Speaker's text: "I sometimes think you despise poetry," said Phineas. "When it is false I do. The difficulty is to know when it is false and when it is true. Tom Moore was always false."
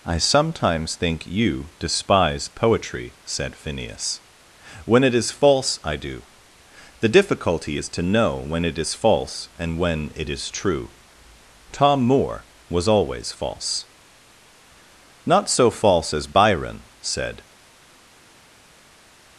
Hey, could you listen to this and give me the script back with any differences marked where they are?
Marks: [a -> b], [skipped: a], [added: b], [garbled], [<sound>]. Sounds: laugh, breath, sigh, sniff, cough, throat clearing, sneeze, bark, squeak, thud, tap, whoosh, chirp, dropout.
"I sometimes think you despise poetry," said Phineas. "When it is false I do. The difficulty is to know when it is false and when it is true. Tom Moore was always false." [added: Not so false as Byron said]